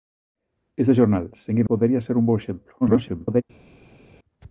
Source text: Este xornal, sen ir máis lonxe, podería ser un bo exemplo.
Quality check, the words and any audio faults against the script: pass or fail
fail